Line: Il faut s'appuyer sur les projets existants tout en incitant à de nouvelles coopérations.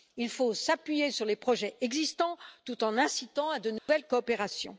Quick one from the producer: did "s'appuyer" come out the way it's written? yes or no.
yes